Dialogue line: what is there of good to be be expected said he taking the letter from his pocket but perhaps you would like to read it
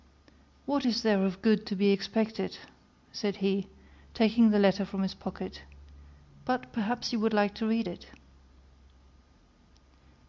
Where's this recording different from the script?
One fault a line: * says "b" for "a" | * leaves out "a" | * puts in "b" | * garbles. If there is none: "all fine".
* leaves out "be"